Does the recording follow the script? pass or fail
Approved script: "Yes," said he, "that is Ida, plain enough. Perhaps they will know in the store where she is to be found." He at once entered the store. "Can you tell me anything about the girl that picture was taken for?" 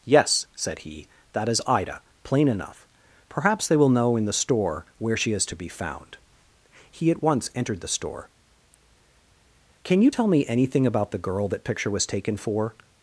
pass